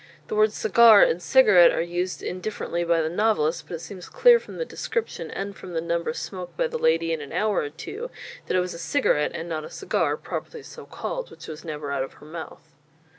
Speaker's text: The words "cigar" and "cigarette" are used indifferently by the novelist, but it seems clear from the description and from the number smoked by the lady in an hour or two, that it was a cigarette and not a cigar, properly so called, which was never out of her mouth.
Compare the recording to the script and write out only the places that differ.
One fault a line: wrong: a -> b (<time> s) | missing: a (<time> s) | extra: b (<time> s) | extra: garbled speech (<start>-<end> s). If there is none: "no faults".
no faults